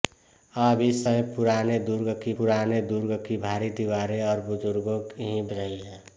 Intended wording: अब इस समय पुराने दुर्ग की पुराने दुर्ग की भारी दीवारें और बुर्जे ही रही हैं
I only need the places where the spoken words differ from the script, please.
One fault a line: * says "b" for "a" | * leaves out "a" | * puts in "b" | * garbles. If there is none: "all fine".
all fine